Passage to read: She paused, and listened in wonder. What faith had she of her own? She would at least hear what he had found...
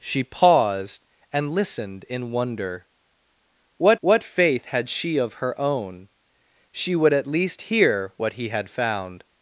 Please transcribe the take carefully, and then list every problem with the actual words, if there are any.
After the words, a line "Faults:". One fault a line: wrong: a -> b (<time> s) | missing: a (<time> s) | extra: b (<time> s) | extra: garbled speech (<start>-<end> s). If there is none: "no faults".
She paused, and listened in wonder. What what faith had she of her own? She would at least hear what he had found...
Faults:
extra: what (4.0 s)